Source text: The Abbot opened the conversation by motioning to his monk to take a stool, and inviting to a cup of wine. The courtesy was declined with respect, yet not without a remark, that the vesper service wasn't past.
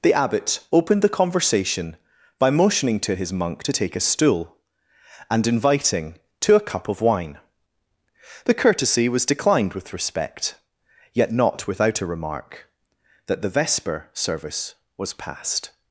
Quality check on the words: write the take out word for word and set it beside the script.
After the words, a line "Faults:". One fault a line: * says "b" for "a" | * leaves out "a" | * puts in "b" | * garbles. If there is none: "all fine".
The Abbot opened the conversation by motioning to his monk to take a stool, and inviting to a cup of wine. The courtesy was declined with respect, yet not without a remark, that the vesper service was past.
Faults:
* says "was" for "wasn't"